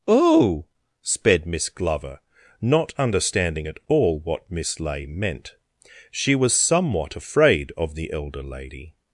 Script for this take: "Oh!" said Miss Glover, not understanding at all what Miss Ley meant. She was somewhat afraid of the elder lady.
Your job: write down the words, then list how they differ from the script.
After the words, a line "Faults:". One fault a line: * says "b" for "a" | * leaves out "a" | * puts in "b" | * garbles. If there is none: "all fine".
"Oh!" sped Miss Glover, not understanding at all what Miss Ley meant. She was somewhat afraid of the elder lady.
Faults:
* says "sped" for "said"